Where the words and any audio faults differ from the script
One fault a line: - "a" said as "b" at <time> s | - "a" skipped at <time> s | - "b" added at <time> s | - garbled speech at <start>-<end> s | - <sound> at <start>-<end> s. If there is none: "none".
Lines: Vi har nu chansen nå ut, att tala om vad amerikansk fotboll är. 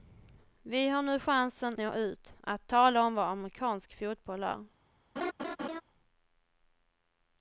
- laugh at 5.2-5.8 s